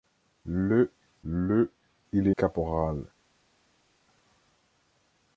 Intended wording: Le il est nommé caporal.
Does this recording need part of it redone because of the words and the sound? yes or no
yes